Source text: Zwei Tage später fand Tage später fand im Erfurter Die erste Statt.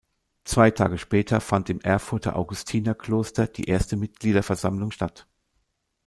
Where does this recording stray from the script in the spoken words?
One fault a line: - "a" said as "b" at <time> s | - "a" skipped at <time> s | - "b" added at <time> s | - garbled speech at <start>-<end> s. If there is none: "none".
- "Tage später fand" skipped at 1.7 s
- "Augustinerkloster" added at 2.4 s
- "Mitgliederversammlung" added at 4.0 s